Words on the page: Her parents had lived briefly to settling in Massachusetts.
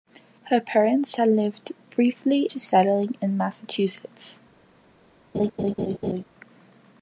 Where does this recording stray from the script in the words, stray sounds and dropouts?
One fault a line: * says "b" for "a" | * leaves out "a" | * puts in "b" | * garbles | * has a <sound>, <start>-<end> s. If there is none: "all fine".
* has a laugh, 5.3-6.2 s